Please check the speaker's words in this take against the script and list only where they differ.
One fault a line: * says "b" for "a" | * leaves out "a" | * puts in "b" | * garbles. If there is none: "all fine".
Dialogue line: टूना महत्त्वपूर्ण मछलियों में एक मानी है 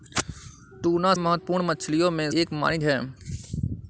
all fine